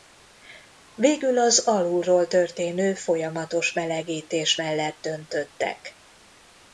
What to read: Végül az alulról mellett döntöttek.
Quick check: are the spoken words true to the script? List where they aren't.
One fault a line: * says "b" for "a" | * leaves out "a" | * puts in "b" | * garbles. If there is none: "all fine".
* puts in "történő folyamatos melegítés"